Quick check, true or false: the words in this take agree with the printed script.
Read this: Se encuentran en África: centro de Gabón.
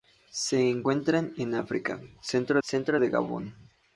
false